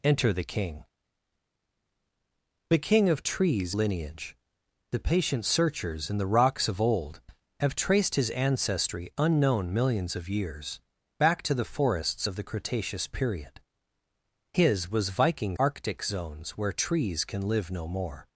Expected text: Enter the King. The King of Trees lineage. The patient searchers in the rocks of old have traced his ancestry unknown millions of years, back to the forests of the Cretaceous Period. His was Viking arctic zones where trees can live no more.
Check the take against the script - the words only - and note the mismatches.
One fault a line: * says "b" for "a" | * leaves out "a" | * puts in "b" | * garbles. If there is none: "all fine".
all fine